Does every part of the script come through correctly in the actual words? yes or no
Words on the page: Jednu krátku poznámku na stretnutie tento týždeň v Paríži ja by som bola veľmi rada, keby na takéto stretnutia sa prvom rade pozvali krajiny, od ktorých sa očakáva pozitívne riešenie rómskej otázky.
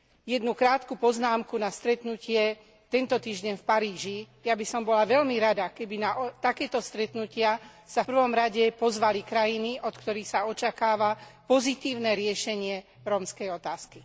yes